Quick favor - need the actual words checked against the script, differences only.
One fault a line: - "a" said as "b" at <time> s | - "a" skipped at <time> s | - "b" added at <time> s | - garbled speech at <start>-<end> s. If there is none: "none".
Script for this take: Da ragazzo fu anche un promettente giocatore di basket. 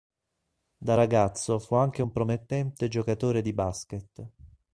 none